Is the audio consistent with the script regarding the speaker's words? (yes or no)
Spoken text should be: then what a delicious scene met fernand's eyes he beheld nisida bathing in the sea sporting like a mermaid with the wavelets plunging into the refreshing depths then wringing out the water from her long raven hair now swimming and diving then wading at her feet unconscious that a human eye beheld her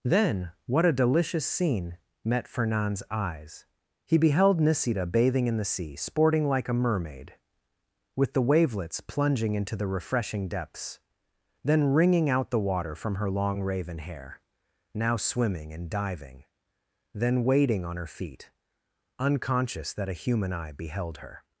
no